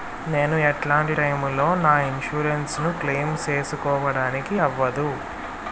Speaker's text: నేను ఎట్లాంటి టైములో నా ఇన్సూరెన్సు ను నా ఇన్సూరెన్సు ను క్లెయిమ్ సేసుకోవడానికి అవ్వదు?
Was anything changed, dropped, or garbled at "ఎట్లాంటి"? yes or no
no